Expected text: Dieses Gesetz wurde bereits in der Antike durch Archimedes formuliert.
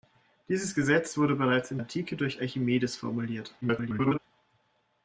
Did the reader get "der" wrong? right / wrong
wrong